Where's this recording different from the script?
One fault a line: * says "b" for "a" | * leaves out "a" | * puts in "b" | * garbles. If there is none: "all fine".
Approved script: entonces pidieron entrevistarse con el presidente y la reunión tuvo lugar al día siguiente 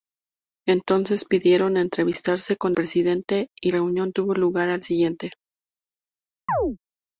* leaves out "el"
* leaves out "la"
* leaves out "día"